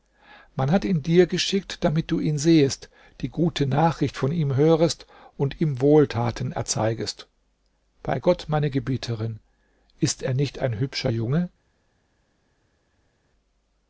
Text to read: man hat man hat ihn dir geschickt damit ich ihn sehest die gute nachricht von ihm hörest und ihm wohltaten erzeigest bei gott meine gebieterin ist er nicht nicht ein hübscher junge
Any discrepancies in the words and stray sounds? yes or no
yes